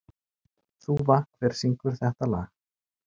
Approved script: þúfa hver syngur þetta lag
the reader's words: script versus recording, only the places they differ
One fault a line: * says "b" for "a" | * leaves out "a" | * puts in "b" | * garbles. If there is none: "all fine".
all fine